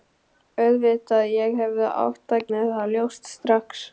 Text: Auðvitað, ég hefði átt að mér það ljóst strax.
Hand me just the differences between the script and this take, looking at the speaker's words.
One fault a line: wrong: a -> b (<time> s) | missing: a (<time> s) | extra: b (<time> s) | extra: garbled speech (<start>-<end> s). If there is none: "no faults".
no faults